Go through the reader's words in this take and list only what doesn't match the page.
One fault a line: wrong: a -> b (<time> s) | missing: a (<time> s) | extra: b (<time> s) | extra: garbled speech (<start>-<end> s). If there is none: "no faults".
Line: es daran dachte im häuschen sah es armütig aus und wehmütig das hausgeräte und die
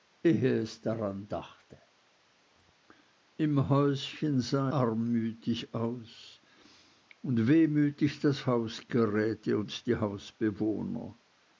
missing: es (4.7 s)